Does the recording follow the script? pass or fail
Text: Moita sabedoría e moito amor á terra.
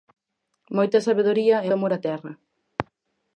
fail